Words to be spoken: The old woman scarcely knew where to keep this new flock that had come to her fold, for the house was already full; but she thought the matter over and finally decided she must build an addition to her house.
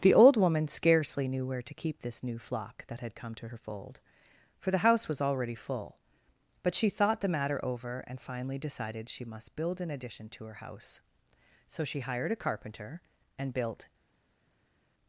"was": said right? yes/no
yes